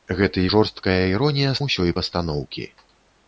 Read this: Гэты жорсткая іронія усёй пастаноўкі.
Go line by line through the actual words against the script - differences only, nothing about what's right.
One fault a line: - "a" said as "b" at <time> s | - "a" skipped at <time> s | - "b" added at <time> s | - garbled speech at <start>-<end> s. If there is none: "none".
none